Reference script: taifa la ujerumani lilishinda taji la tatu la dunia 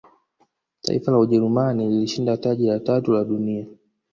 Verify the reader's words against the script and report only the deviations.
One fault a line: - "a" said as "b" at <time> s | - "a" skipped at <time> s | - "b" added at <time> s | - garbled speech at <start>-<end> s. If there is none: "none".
none